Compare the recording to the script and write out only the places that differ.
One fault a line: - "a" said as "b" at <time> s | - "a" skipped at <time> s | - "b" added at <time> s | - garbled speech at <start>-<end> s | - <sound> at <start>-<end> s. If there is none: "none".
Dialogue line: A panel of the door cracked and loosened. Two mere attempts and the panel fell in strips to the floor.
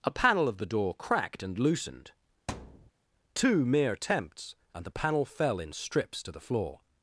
- thud at 2.5-2.9 s